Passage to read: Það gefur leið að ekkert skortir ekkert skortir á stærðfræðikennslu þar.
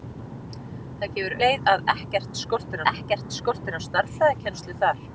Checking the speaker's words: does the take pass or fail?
pass